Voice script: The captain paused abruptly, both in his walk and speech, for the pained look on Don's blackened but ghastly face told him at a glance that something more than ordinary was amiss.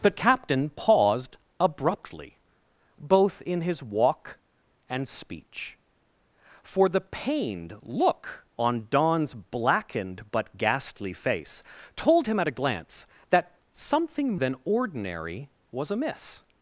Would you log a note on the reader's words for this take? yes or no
yes